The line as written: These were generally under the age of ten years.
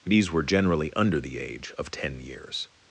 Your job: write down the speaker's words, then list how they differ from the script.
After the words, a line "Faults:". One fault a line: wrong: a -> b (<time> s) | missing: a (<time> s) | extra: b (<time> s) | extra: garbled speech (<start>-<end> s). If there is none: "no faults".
These were generally under the age of ten years.
Faults:
no faults